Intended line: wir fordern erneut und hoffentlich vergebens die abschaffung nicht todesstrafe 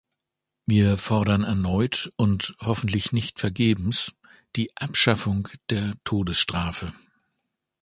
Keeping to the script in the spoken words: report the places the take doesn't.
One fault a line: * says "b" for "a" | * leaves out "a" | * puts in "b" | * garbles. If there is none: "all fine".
* puts in "nicht"
* says "der" for "nicht"